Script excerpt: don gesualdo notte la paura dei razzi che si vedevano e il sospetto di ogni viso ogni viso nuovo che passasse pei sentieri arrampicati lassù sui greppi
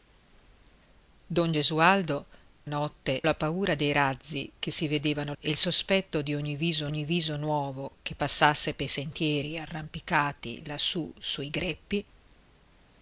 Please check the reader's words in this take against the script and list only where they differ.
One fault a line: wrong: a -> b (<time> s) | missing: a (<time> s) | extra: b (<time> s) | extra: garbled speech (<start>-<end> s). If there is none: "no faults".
no faults